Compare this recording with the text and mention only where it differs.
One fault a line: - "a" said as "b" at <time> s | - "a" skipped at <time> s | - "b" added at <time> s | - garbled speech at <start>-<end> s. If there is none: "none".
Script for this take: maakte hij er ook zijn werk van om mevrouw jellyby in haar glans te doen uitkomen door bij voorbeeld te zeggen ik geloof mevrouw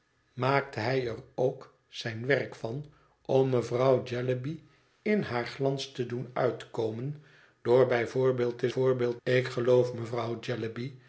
- "zeggen" said as "voorbeeld" at 8.7 s